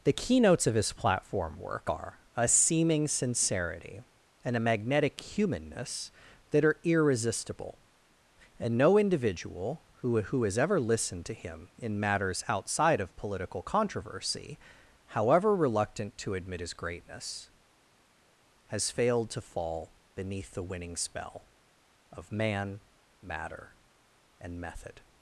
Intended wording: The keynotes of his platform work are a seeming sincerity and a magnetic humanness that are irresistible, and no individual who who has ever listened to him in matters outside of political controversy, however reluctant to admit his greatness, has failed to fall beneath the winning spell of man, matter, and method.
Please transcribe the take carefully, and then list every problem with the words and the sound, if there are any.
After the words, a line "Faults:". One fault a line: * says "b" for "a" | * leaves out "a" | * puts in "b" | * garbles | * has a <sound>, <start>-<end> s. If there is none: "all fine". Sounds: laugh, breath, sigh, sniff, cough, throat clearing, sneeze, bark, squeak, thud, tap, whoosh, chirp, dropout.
The keynotes of his platform work are a seeming sincerity and a magnetic humanness that are irresistible, and no individual who who has ever listened to him in matters outside of political controversy, however reluctant to admit his greatness, has failed to fall beneath the winning spell of man, matter, and method.
Faults:
all fine